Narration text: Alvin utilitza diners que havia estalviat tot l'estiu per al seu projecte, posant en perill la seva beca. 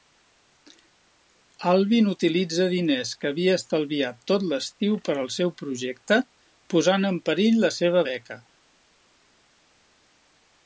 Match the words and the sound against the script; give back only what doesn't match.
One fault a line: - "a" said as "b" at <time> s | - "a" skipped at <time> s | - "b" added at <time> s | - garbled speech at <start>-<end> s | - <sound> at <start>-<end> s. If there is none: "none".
none